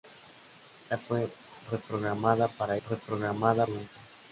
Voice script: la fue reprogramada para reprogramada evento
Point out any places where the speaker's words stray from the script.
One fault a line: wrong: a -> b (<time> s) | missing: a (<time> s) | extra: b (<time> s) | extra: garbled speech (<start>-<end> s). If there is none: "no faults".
no faults